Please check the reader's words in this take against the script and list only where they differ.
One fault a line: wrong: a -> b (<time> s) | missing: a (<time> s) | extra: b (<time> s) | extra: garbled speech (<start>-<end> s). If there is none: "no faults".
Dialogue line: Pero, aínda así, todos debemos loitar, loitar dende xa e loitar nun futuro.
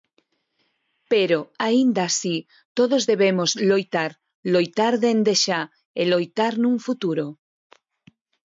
no faults